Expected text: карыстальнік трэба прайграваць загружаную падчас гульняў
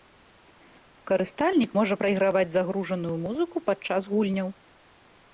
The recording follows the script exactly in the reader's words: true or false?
false